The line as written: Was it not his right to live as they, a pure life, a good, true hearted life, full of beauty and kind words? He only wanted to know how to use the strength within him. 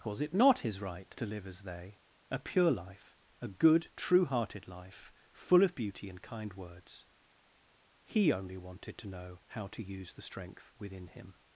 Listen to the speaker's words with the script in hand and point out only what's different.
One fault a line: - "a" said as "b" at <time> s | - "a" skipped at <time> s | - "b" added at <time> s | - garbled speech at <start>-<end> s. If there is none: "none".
none